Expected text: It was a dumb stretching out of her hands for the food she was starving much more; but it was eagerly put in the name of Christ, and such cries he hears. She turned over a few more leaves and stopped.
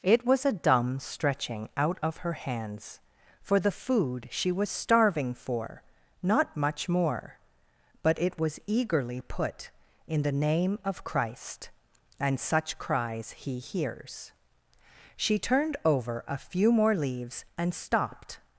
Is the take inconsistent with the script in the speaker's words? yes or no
yes